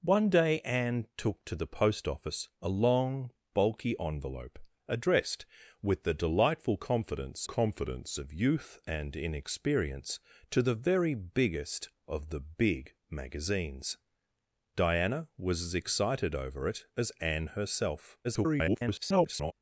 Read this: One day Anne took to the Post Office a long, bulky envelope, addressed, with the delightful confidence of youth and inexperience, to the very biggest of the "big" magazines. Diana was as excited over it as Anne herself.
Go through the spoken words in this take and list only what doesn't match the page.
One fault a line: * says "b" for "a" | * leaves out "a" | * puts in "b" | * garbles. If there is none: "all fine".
* puts in "confidence"
* garbles